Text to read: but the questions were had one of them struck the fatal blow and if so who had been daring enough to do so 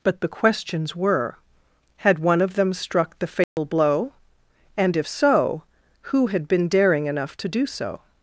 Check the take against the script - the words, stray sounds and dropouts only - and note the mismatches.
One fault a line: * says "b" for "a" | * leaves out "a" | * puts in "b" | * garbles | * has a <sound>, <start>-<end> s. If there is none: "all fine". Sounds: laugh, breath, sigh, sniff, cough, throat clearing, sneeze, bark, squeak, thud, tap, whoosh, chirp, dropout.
* has a dropout, 3.4-3.6 s